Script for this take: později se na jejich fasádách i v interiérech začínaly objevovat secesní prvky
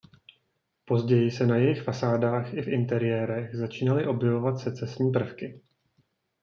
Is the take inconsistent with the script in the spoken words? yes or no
no